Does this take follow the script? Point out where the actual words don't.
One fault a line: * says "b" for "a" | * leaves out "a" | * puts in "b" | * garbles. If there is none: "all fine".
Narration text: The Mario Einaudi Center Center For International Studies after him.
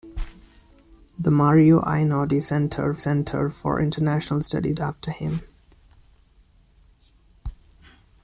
all fine